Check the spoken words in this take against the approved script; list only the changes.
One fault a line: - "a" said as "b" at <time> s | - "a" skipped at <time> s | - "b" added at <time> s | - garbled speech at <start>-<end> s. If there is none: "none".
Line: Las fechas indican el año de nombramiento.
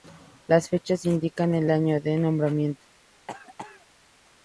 none